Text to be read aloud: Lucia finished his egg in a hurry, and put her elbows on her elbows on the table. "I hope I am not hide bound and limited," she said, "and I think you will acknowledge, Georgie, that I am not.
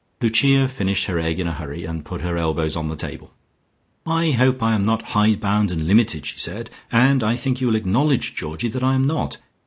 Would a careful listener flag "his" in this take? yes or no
yes